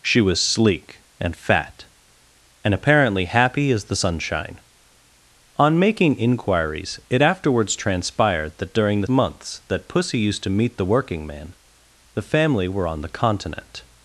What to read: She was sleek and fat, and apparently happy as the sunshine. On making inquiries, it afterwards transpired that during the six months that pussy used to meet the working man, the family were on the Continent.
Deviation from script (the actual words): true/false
true